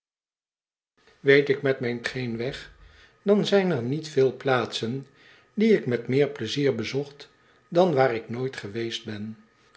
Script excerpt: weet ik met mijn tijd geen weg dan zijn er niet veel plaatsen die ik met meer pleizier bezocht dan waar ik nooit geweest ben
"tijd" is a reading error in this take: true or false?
true